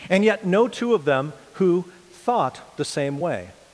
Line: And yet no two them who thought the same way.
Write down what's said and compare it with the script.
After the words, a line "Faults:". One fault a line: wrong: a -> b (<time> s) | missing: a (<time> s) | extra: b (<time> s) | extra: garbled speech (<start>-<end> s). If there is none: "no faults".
And yet no two of them who thought the same way.
Faults:
extra: of (0.9 s)